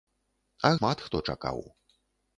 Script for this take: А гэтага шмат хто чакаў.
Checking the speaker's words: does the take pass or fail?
fail